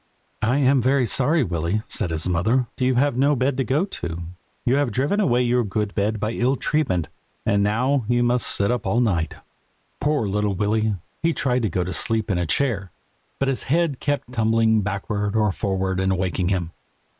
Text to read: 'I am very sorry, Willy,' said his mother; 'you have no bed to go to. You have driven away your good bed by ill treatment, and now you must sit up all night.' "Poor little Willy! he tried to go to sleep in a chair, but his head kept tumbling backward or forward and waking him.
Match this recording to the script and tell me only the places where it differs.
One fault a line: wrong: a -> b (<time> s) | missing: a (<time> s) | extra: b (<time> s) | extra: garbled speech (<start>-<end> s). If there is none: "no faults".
no faults